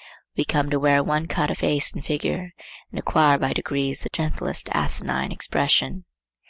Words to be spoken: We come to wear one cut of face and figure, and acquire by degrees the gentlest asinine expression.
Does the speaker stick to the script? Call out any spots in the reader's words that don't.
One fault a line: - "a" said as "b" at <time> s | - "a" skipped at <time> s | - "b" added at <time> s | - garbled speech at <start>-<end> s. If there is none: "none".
none